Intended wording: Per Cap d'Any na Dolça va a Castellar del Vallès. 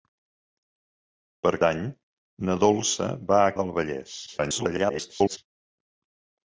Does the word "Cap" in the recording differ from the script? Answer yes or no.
yes